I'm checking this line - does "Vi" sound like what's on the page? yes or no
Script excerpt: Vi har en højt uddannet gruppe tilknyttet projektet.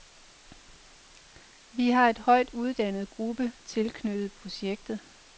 yes